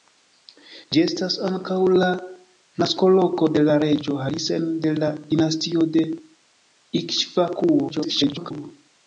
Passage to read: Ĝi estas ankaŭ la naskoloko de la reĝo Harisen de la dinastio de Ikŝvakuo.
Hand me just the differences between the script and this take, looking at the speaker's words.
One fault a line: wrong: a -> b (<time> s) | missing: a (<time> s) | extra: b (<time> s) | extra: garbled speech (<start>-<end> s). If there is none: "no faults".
extra: garbled speech (7.9-8.5 s)